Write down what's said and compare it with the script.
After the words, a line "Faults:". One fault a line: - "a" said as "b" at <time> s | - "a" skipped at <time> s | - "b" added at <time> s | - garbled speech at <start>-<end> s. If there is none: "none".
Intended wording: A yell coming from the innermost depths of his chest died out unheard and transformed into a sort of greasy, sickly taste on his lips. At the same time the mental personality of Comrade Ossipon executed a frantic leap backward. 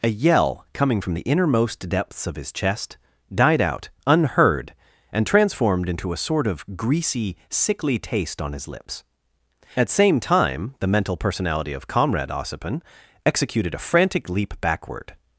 A yell coming from the innermost depths of his chest died out unheard and transformed into a sort of greasy, sickly taste on his lips. At same time the mental personality of Comrade Ossipon executed a frantic leap backward.
Faults:
- "the" skipped at 9.9 s